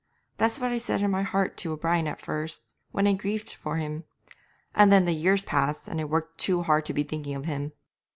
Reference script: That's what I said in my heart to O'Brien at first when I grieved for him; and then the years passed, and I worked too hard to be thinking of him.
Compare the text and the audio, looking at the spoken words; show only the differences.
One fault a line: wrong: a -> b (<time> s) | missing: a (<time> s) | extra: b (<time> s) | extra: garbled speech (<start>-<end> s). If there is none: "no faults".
no faults